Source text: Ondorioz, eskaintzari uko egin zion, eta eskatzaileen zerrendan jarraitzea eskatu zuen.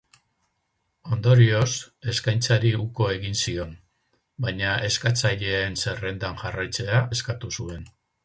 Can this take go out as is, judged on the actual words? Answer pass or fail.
fail